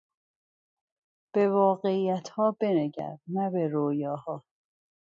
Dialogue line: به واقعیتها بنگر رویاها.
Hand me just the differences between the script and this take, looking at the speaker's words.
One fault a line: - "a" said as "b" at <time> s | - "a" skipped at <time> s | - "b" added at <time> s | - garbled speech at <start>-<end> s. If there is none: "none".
- "نه به" added at 3.3 s